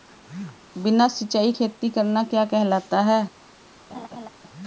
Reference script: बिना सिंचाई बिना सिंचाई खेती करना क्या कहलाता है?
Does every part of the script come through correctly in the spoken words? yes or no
no